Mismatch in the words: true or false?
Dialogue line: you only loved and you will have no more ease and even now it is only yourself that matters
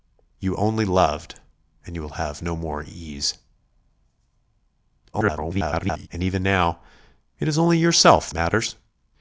true